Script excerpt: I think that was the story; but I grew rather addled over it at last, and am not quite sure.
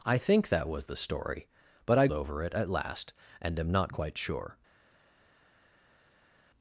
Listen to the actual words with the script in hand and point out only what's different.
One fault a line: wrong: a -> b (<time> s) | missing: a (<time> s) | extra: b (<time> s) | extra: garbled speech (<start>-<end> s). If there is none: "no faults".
missing: grew rather addled (2.1 s)